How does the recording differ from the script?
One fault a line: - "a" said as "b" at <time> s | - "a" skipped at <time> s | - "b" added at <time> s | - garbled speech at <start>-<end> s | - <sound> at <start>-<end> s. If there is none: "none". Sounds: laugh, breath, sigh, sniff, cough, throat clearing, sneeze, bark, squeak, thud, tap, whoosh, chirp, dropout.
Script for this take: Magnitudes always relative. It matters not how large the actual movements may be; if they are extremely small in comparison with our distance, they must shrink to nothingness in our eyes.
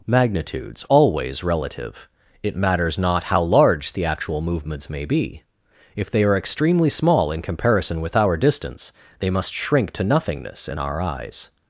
none